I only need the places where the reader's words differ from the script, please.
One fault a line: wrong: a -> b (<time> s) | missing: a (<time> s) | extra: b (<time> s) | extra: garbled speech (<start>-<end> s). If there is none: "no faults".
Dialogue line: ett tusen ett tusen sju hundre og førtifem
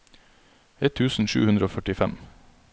missing: ett tusen (1.3 s)